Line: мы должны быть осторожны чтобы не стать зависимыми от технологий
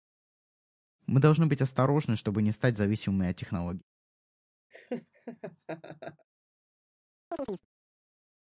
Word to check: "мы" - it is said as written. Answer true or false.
true